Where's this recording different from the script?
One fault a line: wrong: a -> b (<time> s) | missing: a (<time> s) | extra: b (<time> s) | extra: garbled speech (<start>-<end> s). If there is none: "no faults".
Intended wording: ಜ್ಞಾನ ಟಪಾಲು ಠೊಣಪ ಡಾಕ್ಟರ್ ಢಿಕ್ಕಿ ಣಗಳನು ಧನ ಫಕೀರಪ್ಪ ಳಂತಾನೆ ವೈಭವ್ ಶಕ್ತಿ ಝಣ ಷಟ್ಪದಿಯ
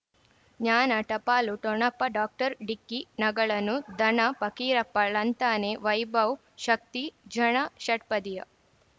no faults